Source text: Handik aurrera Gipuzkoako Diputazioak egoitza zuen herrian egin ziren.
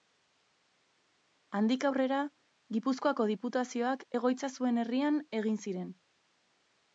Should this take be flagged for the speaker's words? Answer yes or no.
no